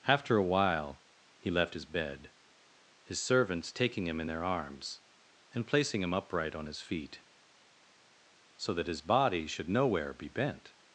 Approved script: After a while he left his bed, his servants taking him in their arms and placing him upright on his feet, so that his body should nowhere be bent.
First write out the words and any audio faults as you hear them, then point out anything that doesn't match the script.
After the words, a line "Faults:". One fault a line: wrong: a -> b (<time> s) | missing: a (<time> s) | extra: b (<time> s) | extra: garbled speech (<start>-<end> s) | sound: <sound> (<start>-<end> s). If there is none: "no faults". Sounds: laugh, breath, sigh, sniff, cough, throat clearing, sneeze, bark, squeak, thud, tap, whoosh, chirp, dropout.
After a while he left his bed, his servants taking him in their arms and placing him upright on his feet, so that his body should nowhere be bent.
Faults:
no faults